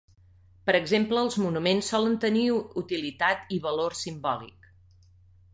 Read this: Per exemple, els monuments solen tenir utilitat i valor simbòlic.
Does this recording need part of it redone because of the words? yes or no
no